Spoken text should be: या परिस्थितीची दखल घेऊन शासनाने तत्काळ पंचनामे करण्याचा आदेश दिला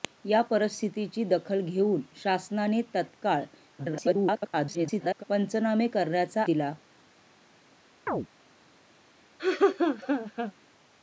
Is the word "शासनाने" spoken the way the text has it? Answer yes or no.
yes